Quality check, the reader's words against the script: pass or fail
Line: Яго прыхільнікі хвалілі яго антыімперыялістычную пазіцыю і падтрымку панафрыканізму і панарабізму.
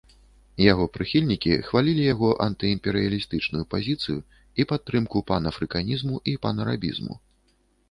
pass